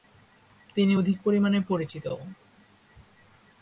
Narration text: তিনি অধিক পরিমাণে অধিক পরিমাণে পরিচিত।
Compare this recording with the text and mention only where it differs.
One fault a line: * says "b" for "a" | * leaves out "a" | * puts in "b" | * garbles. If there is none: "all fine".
* leaves out "অধিক পরিমাণে"